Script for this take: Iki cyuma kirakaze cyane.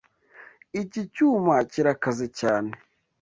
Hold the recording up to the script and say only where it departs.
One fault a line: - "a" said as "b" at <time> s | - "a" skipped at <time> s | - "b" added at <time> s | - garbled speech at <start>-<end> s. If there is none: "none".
none